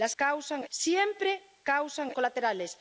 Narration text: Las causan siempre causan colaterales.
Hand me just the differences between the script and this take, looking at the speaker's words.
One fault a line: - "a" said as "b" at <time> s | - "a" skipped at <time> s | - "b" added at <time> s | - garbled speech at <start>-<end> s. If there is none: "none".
none